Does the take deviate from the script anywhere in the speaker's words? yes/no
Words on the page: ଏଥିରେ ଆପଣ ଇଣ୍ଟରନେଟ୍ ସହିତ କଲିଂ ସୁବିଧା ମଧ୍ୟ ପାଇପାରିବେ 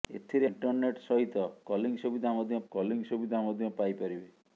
yes